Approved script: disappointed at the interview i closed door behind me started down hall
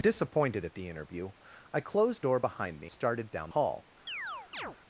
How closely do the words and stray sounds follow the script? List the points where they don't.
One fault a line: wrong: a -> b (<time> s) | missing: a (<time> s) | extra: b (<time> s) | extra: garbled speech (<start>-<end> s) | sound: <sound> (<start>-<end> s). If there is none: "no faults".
sound: chirp (4.1-4.8 s)